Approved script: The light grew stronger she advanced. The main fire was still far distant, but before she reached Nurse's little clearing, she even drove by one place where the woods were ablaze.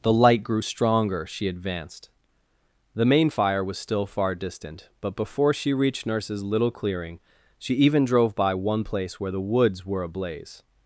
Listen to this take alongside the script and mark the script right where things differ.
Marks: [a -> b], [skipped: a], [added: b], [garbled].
The light grew stronger she advanced. The main fire was still far distant, but before she reached Nurse's little clearing, she even drove by one place where the woods were ablaze.